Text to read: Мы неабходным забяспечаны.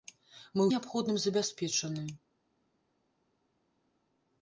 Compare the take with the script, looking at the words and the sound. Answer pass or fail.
pass